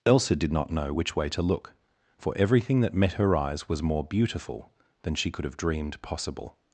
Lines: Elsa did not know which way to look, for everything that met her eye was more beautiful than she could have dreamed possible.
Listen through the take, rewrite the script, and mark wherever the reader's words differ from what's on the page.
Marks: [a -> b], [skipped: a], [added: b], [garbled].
Elsa did not know which way to look, for everything that met her [eye -> eyes] was more beautiful than she could have dreamed possible.